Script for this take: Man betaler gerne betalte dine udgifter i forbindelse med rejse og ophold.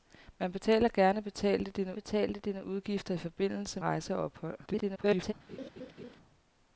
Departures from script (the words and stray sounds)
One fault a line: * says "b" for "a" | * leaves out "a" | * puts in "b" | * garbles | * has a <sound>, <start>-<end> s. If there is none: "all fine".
* puts in "betalte dine"
* leaves out "med"
* garbles
* has a laugh, 5.5-6.2 s